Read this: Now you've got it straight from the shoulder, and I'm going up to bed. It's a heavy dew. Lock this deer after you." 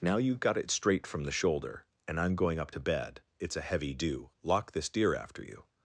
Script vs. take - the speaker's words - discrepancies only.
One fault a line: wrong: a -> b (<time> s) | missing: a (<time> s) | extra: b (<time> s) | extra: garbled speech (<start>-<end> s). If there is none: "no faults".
no faults